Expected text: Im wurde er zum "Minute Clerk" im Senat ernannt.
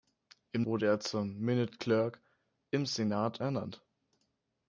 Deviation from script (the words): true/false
false